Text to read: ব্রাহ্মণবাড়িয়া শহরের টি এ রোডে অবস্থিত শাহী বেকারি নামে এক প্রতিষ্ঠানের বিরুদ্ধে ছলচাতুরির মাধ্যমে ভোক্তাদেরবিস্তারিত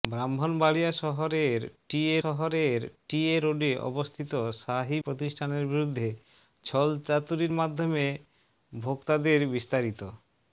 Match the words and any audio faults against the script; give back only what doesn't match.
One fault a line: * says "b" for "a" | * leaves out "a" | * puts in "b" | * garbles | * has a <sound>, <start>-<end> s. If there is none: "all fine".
* puts in "শহরের টি এ"
* leaves out "বেকারি নামে এক"